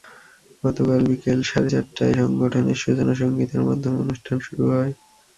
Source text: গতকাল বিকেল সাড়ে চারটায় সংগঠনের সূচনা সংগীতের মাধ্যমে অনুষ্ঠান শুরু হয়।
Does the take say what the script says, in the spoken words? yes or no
yes